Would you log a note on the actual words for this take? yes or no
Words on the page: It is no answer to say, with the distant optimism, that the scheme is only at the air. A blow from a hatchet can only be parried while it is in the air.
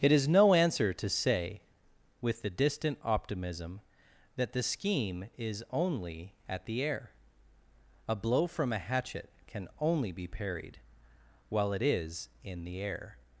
no